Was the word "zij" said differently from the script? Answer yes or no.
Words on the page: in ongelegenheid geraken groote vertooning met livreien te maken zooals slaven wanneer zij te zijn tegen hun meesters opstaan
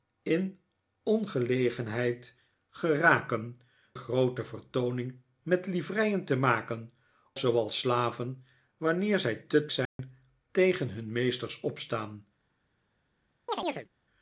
no